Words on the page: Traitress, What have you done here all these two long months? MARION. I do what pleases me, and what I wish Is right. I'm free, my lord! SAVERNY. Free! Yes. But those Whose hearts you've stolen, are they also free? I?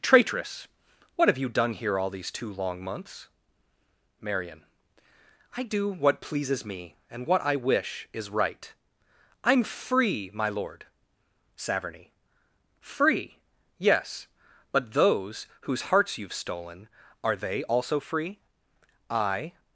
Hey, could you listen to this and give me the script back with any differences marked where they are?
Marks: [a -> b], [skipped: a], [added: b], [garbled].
Traitress, What have you done here all these two long months? MARION. I do what pleases me, and what I wish Is right. I'm free, my lord! SAVERNY. Free! Yes. But those Whose hearts you've stolen, are they also free? I?